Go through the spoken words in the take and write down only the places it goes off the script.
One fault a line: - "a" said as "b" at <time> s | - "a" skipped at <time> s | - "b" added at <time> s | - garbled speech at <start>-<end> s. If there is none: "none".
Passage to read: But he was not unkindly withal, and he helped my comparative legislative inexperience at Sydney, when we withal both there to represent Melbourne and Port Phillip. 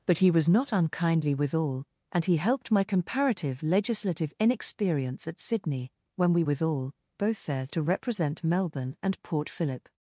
none